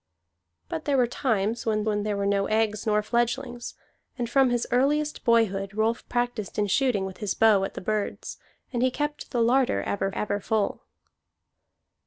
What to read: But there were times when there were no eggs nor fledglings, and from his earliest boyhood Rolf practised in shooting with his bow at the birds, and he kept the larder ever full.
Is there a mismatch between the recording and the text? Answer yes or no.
yes